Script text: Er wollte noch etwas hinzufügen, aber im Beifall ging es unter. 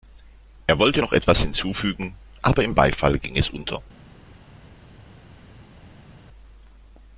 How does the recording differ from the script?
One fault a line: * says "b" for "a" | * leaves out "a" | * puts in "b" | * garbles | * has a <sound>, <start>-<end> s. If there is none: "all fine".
all fine